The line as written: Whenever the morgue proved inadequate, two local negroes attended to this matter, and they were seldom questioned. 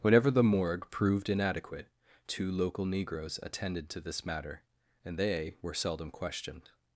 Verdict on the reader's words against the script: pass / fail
pass